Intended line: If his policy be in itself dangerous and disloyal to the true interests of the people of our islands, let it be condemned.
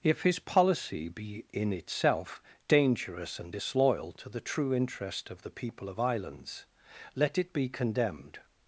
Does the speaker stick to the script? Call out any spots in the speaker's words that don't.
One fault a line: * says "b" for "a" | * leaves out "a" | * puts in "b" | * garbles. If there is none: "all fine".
* says "interest" for "interests"
* leaves out "our"